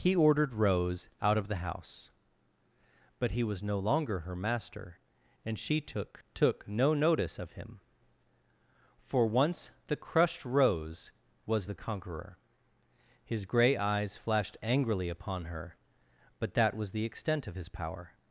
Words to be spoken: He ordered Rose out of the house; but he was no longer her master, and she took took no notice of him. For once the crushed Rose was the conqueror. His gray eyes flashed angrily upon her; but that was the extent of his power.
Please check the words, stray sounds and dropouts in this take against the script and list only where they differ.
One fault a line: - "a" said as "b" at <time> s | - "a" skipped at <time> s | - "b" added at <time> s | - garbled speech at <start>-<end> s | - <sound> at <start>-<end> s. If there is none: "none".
none